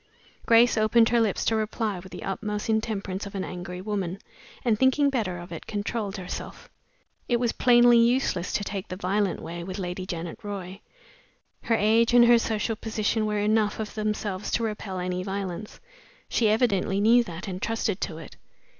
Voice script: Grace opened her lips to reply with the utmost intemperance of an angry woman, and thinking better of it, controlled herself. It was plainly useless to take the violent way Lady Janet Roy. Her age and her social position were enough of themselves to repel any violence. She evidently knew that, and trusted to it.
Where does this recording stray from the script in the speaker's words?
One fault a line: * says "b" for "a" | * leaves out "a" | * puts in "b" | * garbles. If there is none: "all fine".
* puts in "with"